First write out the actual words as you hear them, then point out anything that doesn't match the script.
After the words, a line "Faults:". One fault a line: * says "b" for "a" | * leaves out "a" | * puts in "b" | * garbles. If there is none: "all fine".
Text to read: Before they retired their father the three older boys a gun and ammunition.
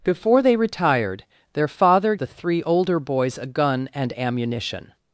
Before they retired their father the three older boys a gun and ammunition.
Faults:
all fine